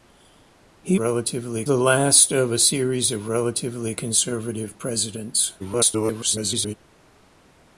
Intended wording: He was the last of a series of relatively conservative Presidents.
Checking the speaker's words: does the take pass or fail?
fail